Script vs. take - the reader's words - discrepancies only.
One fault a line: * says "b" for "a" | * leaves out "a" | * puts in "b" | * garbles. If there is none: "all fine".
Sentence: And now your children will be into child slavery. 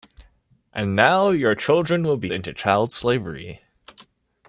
all fine